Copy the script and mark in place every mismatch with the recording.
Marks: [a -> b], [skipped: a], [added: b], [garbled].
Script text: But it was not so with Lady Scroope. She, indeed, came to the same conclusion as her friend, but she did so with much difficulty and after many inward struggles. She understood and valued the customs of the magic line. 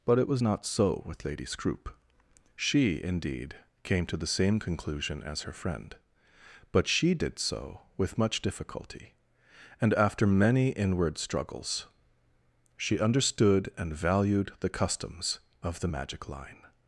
But it was not so with Lady Scroope. She, indeed, came to the same conclusion as her friend, but she did so with much difficulty and after many inward struggles. She understood and valued the customs of the magic line.